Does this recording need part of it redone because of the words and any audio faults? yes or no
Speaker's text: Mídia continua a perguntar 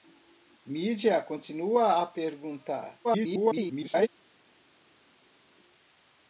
yes